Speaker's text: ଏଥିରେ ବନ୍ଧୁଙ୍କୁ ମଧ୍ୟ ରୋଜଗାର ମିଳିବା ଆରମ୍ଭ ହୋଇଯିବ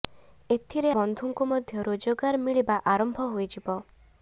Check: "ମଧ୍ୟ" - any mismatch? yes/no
no